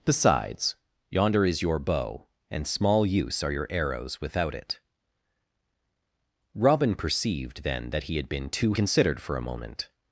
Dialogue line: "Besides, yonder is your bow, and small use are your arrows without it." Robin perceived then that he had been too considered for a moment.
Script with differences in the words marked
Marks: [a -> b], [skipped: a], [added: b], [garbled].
"Besides, yonder is your bow, and small use are your arrows without it." Robin perceived then that he had been too considered for a moment.